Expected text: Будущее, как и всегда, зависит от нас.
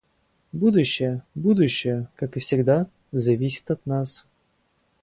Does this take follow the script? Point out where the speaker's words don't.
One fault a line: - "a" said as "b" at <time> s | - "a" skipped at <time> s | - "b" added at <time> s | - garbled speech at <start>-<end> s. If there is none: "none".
- "будущее" added at 1.3 s